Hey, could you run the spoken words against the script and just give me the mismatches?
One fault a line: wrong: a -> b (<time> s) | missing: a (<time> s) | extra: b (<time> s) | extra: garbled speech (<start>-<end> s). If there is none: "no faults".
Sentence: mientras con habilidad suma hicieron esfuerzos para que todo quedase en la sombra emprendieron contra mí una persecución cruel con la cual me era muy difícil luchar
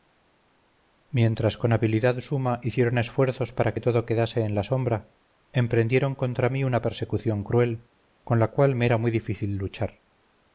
no faults